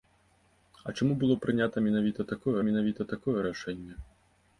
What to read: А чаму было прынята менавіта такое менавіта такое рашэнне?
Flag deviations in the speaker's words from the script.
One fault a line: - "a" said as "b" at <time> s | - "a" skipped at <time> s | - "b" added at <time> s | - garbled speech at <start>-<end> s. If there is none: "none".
none